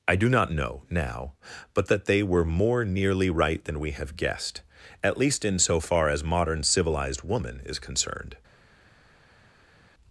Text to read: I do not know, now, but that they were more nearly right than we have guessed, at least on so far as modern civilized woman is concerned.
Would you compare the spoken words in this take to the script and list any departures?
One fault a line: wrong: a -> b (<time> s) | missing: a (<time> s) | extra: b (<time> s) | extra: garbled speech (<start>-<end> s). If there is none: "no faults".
wrong: on -> in (5.5 s)